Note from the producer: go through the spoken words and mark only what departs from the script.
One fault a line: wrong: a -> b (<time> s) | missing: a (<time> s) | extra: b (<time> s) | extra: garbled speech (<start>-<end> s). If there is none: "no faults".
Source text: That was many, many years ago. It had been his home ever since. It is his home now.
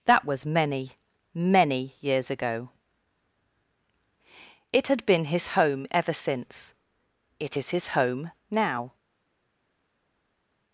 no faults